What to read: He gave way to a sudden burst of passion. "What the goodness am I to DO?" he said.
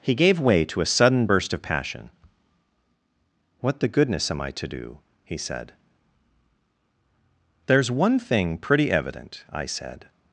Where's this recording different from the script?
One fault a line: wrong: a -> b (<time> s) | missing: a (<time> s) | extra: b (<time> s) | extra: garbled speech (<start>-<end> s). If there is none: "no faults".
extra: There's one thing pretty evident I said (7.7 s)